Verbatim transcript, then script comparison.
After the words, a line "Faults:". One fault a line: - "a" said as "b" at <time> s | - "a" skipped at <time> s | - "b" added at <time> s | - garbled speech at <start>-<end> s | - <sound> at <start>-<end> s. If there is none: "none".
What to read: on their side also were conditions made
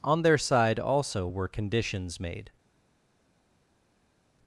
on their side also were conditions made
Faults:
none